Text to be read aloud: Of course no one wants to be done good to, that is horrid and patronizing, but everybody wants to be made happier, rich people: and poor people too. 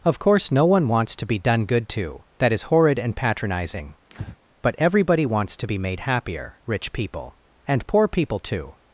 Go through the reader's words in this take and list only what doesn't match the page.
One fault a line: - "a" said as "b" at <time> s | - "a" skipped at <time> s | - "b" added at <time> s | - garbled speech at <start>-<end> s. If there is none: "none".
none